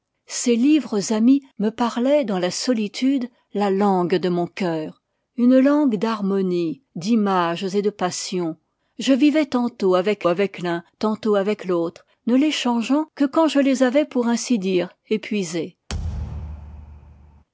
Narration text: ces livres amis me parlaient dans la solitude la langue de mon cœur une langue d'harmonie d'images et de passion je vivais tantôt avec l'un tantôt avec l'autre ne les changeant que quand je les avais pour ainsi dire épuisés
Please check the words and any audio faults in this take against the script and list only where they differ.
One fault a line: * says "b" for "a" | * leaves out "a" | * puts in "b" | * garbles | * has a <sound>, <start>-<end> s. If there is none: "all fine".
* puts in "avec"
* has a thud, 15.9-17.4 s